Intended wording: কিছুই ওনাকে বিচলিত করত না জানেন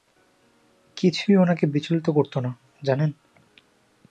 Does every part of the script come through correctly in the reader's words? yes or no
yes